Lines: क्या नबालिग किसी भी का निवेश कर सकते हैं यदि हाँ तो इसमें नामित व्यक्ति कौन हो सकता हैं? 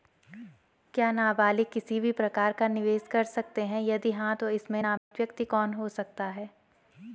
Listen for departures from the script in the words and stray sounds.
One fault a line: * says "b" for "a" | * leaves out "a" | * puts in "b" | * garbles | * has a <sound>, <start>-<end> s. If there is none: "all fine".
* puts in "प्रकार"
* has a dropout, 5.0-5.1 s